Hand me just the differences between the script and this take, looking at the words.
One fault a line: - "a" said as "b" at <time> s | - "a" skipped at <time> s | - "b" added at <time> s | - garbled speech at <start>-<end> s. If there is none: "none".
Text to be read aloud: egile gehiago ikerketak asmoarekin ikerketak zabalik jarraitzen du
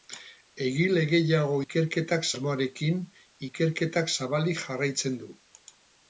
none